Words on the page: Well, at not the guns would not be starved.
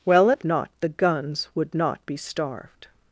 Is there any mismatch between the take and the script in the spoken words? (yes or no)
no